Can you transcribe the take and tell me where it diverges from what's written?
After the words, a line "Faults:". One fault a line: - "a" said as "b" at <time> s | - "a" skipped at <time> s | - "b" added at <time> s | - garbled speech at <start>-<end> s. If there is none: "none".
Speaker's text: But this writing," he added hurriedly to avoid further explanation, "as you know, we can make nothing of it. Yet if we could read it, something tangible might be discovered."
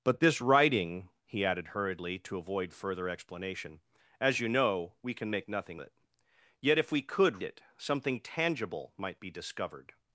But this writing," he added hurriedly to avoid further explanation, "as you know, we can make nothing it. Yet if we could it, something tangible might be discovered."
Faults:
- "of" skipped at 5.8 s
- "read" skipped at 7.4 s